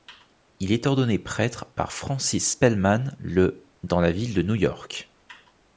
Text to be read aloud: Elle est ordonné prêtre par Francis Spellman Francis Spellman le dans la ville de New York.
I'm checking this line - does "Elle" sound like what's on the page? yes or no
no